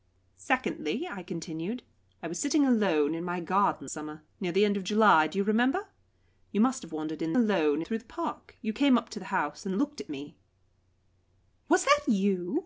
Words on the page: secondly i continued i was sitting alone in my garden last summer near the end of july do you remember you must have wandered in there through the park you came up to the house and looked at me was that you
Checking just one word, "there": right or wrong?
wrong